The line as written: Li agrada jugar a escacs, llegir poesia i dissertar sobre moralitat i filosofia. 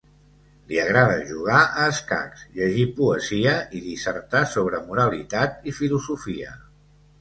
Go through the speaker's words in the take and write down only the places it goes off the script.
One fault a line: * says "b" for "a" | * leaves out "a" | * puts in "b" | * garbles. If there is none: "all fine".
all fine